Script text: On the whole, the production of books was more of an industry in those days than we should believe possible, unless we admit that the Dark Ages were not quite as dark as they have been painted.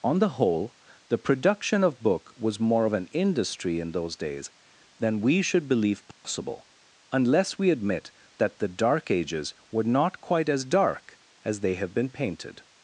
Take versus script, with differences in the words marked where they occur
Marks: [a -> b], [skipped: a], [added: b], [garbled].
On the whole, the production of [books -> book] was more of an industry in those days than we should believe possible, unless we admit that the Dark Ages were not quite as dark as they have been painted.